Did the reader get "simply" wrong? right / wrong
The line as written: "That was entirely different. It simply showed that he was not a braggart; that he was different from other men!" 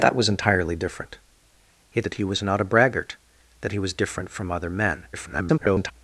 wrong